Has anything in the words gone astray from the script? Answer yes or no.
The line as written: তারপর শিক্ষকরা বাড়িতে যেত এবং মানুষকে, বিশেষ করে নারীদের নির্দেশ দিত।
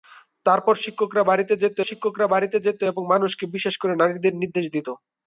yes